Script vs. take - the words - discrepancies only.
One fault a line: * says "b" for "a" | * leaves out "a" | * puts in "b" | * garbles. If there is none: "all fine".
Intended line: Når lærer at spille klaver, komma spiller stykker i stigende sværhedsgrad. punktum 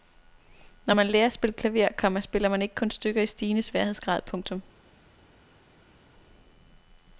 * puts in "man"
* puts in "man ikke kun"